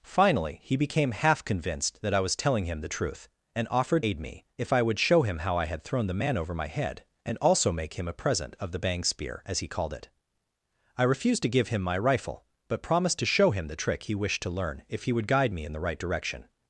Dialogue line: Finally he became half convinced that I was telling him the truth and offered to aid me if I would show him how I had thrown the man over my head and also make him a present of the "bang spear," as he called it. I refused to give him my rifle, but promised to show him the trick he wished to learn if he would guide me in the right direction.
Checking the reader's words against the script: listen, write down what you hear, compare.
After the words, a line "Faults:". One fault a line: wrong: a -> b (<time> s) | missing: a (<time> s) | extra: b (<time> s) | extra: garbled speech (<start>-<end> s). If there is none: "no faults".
Finally he became half convinced that I was telling him the truth and offered aid me if I would show him how I had thrown the man over my head and also make him a present of the "bang spear," as he called it. I refused to give him my rifle, but promised to show him the trick he wished to learn if he would guide me in the right direction.
Faults:
missing: to (4.0 s)